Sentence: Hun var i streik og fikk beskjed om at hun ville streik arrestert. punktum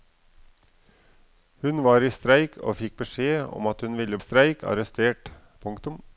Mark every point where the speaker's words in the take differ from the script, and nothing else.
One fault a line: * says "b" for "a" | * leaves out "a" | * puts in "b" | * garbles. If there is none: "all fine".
all fine